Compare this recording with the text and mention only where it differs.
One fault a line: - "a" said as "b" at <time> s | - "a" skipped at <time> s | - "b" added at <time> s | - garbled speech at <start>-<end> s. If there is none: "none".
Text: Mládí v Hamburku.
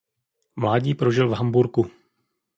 - "prožil" added at 0.9 s